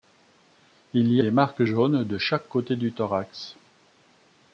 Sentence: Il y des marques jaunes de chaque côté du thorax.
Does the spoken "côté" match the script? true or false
true